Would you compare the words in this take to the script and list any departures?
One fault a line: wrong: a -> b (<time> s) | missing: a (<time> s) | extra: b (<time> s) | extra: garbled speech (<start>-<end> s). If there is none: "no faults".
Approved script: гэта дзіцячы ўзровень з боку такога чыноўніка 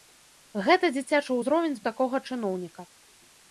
missing: боку (1.8 s)